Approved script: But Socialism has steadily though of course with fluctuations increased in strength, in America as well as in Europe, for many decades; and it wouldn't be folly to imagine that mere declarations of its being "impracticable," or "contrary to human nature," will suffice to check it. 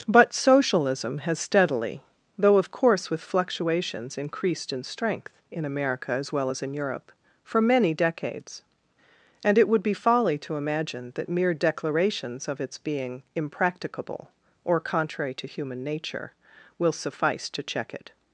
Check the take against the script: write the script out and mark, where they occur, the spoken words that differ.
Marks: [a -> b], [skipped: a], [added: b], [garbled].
But Socialism has steadily though of course with fluctuations increased in strength, in America as well as in Europe, for many decades; and it [wouldn't -> would] be folly to imagine that mere declarations of its being "impracticable," or "contrary to human nature," will suffice to check it.